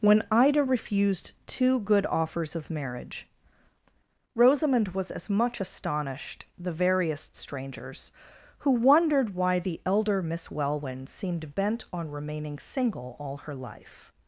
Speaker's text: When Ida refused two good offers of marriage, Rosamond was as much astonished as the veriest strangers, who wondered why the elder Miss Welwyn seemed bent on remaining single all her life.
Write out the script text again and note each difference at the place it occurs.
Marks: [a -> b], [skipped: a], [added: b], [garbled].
When Ida refused two good offers of marriage, Rosamond was as much astonished [skipped: as] the veriest strangers, who wondered why the elder Miss Welwyn seemed bent on remaining single all her life.